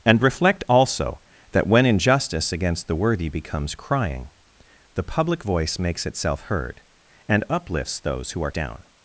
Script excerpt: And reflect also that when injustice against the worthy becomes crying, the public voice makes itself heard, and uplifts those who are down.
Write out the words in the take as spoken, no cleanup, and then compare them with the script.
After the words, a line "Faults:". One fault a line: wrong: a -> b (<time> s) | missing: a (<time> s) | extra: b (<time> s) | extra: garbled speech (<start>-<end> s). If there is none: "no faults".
And reflect also that when injustice against the worthy becomes crying, the public voice makes itself heard, and uplifts those who are down.
Faults:
no faults